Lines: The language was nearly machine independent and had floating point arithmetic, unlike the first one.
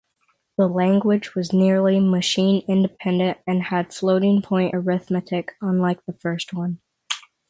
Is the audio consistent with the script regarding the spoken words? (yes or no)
yes